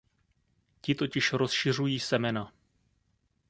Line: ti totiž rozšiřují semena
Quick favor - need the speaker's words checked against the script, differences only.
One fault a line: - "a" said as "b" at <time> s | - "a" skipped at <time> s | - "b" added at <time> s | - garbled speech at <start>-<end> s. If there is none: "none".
none